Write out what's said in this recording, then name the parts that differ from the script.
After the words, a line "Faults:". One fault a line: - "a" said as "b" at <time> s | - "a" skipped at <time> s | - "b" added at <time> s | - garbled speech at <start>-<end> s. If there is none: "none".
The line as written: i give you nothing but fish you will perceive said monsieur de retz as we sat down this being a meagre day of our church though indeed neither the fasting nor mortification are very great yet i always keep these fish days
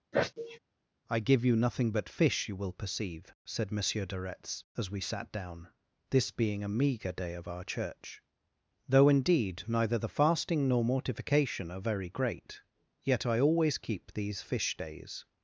i give you nothing but fish you will perceive said monsieur de retz as we sat down this being a meagre day of our church though indeed neither the fasting nor mortification are very great yet i always keep these fish days
Faults:
none